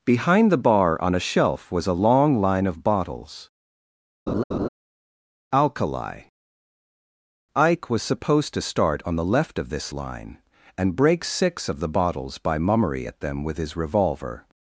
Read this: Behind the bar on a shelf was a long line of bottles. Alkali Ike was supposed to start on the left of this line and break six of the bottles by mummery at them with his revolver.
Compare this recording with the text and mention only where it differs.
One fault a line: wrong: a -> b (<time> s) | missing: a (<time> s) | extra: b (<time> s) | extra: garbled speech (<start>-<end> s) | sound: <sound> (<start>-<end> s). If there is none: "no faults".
sound: laugh (4.3-4.7 s)